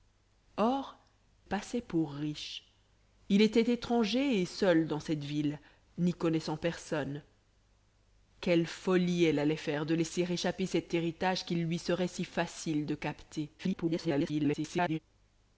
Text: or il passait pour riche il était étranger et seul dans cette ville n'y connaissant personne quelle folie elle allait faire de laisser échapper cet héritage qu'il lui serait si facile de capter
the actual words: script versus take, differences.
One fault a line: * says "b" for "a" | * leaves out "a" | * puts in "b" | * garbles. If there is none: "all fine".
* leaves out "il"
* garbles